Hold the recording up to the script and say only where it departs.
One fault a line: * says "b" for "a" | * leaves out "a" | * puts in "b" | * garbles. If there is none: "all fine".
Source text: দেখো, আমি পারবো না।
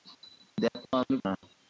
* leaves out "পারবো"